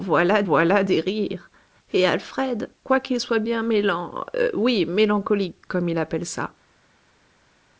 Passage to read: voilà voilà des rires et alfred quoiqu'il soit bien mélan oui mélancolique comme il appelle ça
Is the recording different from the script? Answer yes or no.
no